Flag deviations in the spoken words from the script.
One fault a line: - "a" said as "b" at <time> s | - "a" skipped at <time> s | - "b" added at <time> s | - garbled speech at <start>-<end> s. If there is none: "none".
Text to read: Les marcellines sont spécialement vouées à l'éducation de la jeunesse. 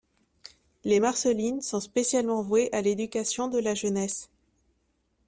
none